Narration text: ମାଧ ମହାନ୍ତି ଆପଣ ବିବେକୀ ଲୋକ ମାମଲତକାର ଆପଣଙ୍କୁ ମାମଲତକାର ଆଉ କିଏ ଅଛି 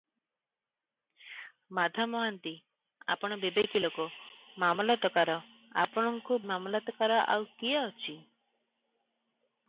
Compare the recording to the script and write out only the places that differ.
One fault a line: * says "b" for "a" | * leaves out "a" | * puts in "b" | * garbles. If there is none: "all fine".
all fine